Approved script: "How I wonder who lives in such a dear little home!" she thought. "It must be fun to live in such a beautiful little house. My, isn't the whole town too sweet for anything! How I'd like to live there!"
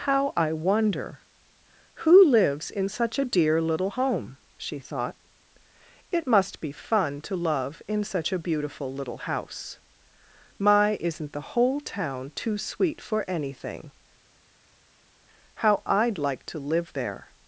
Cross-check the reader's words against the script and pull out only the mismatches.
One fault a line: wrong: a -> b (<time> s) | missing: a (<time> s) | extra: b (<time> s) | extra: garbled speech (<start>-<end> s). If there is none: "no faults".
wrong: live -> love (7.3 s)